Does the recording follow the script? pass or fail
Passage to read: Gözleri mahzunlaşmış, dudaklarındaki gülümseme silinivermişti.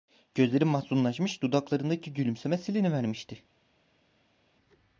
pass